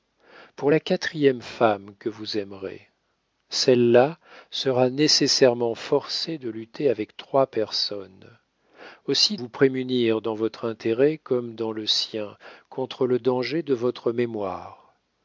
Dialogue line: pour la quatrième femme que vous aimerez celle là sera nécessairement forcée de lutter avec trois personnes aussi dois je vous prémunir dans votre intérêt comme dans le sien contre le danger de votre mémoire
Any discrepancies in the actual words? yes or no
yes